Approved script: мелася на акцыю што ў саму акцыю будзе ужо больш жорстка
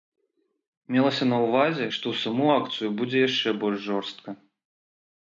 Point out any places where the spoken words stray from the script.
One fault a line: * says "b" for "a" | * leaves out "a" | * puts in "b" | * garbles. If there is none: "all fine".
* says "ўвазе" for "акцыю"
* says "яшчэ" for "ужо"